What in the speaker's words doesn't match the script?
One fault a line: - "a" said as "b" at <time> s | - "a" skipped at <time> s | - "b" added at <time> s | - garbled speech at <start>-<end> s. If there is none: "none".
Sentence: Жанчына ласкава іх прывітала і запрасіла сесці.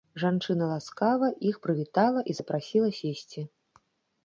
none